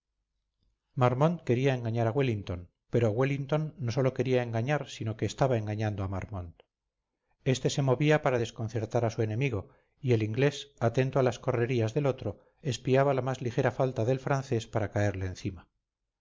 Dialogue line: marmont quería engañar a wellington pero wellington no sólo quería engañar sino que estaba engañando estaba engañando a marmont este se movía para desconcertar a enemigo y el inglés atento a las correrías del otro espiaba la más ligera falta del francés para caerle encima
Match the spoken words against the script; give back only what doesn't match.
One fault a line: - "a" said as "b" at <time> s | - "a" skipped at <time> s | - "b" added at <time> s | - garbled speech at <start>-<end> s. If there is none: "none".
- "estaba engañando" skipped at 6.0 s
- "su" added at 9.1 s